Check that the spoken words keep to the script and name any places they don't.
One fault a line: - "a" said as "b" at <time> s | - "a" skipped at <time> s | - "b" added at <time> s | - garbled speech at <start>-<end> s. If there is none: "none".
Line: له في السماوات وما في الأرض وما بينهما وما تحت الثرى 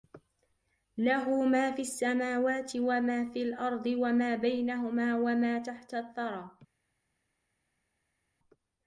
- "ما" added at 1.4 s